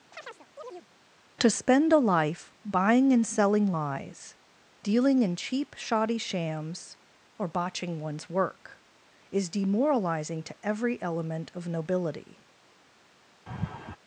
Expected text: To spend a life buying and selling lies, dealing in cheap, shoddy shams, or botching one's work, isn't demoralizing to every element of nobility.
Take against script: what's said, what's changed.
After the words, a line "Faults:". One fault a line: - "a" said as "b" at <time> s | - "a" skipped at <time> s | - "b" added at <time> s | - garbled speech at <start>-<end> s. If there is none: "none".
To spend a life buying and selling lies, dealing in cheap, shoddy shams, or botching one's work, is demoralizing to every element of nobility.
Faults:
- "isn't" said as "is" at 9.3 s